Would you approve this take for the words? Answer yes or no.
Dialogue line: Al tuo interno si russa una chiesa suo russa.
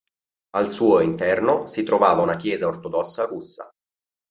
no